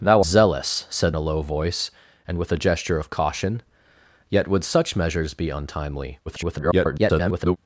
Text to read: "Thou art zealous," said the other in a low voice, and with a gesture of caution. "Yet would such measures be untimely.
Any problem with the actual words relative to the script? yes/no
yes